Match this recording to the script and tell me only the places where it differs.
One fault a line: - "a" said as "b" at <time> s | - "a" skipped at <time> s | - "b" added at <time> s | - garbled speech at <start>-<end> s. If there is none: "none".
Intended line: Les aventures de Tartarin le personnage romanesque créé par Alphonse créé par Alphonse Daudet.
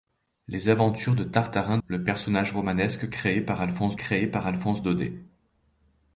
none